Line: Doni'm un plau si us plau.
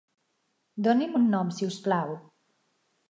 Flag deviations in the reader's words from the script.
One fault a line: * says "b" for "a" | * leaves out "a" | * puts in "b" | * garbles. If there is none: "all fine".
* says "nom" for "plau"